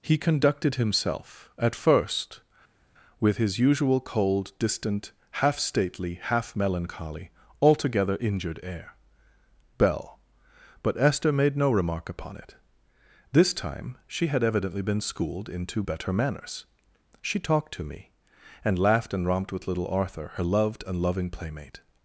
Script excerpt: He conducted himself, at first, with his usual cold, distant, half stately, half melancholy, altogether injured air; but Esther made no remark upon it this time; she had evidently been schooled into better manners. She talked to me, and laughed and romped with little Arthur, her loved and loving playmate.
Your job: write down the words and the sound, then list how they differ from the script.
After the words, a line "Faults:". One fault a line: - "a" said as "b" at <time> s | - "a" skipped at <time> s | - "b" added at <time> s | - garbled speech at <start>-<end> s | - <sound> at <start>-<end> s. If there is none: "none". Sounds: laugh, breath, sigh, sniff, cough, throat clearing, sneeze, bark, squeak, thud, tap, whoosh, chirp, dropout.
He conducted himself, at first, with his usual cold, distant, half stately, half melancholy, altogether injured air; bell but Esther made no remark upon it this time; she had evidently been schooled into better manners. She talked to me, and laughed and romped with little Arthur, her loved and loving playmate.
Faults:
- "bell" added at 9.8 s